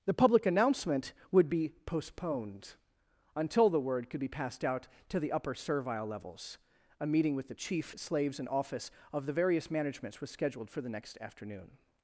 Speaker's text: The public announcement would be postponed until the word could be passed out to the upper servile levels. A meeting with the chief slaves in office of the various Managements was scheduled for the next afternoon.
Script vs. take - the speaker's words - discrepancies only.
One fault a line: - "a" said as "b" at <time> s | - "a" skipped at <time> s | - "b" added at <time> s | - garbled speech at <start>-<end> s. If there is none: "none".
none